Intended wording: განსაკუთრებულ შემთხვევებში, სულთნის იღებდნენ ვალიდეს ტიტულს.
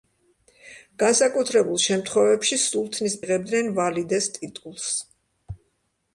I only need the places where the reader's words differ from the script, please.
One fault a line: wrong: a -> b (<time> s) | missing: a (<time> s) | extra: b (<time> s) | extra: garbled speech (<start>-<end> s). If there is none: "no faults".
no faults